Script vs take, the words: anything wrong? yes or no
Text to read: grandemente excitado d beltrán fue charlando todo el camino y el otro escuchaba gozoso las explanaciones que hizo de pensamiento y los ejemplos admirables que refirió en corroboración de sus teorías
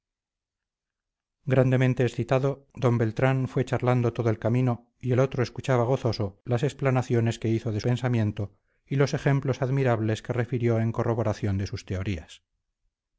no